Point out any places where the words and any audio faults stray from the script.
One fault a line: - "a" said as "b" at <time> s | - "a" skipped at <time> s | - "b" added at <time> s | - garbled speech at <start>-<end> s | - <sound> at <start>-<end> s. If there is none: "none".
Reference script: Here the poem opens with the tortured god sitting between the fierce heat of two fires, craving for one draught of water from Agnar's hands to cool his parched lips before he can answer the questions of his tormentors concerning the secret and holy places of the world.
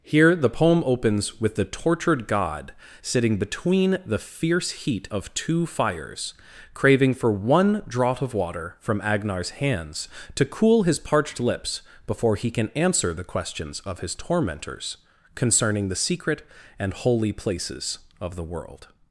none